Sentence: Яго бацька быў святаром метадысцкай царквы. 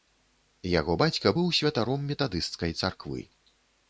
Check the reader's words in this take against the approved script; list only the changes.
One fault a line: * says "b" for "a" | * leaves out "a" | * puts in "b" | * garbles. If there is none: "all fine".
all fine